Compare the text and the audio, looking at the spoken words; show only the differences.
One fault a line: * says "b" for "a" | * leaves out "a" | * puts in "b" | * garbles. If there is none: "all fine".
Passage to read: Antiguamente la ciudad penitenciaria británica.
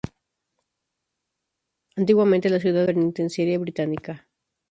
all fine